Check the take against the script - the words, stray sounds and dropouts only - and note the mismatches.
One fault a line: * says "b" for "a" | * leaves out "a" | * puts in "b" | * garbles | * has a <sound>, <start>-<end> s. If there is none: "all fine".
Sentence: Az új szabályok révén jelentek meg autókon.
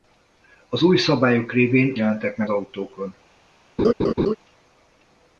* has a laugh, 3.8-4.3 s